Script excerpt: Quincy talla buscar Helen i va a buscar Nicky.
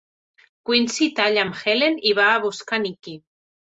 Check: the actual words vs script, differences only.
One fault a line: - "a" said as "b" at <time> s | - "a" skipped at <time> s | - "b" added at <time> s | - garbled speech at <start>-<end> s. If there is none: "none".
- "buscar" said as "amb" at 1.5 s